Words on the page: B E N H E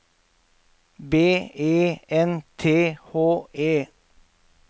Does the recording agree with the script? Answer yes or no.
no